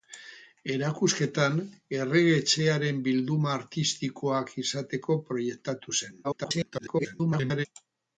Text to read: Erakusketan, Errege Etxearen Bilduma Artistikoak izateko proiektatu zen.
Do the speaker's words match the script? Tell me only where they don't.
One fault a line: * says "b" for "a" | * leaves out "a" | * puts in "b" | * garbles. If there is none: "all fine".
* garbles